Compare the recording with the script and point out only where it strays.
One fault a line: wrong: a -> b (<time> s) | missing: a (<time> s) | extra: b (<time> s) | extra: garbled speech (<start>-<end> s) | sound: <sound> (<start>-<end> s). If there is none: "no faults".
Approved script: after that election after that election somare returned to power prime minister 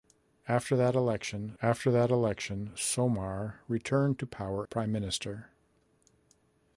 no faults